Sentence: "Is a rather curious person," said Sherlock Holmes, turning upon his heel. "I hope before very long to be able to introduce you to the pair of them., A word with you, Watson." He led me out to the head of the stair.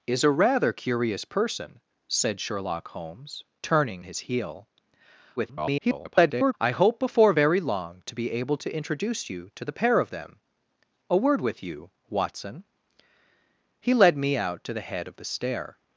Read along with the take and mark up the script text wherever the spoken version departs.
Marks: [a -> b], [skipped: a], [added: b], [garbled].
"Is a rather curious person," said Sherlock Holmes, turning [skipped: upon] his heel. [garbled] "I hope before very long to be able to introduce you to the pair of them., A word with you, Watson." He led me out to the head of the stair.